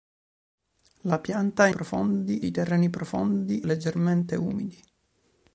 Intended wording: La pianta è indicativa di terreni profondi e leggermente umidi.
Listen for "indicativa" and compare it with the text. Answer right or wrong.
wrong